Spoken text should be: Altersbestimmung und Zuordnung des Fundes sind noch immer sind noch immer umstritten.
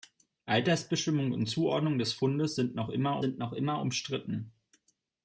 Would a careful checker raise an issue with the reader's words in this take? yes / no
no